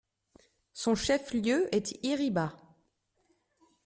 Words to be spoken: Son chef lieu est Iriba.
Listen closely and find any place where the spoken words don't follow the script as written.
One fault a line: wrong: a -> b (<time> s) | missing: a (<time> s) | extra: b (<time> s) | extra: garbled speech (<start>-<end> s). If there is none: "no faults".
no faults